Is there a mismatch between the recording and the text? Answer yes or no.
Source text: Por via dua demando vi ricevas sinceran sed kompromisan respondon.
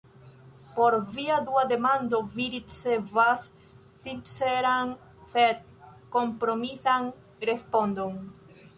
no